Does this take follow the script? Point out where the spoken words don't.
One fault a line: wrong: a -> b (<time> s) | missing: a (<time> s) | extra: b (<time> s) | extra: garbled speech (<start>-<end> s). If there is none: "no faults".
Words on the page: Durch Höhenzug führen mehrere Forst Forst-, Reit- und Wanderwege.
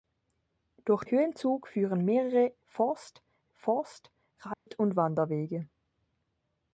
no faults